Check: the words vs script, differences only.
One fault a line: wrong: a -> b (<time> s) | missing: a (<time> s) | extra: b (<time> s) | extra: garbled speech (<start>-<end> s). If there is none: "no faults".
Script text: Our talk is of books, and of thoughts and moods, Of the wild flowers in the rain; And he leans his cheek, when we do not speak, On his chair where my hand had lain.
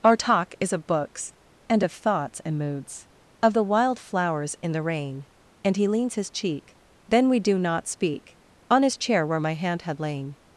wrong: when -> then (7.1 s)